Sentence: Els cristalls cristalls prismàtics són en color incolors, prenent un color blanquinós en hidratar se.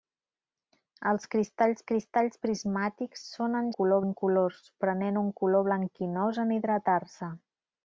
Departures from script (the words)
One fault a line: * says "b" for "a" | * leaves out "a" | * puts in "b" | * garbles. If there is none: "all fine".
all fine